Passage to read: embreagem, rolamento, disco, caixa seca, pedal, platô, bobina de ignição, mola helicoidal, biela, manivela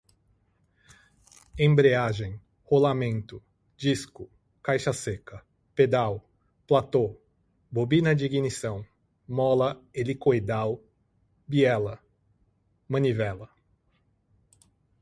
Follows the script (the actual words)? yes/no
yes